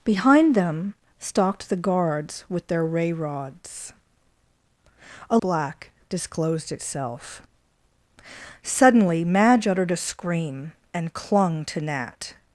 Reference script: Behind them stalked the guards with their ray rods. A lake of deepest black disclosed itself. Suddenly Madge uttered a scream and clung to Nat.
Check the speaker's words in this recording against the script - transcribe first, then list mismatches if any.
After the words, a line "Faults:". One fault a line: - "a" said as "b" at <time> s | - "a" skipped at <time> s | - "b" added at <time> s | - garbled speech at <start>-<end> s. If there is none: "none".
Behind them stalked the guards with their ray rods. A black disclosed itself. Suddenly Madge uttered a scream and clung to Nat.
Faults:
- "lake of deepest" skipped at 5.4 s